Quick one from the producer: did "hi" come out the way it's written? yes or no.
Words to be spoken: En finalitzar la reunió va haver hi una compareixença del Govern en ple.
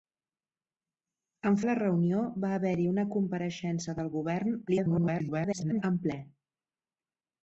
yes